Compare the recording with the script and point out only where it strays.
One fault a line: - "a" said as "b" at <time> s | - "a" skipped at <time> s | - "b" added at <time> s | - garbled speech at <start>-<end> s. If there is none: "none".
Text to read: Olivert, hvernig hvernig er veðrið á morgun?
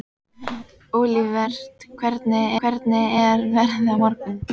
none